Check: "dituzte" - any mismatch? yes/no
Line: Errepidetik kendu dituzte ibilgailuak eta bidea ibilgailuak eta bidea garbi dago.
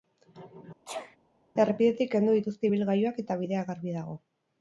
no